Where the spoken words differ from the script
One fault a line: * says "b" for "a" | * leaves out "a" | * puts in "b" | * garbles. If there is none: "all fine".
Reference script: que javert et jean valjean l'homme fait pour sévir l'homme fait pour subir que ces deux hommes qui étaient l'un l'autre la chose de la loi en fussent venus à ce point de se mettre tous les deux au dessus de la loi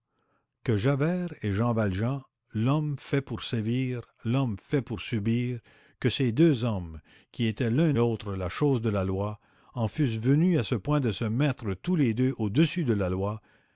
all fine